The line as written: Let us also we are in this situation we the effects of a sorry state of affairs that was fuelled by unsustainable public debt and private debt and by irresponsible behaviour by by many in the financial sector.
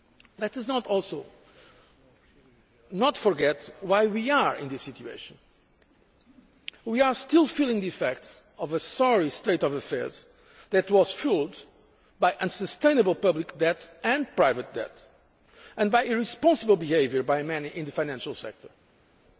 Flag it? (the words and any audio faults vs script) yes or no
yes